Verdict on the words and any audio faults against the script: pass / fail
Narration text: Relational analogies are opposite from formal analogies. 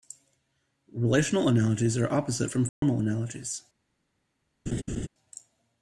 fail